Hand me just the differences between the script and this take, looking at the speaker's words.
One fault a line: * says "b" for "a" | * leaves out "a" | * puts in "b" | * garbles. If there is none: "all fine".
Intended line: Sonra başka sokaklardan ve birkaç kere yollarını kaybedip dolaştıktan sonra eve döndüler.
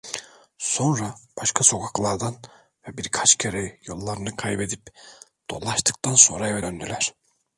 all fine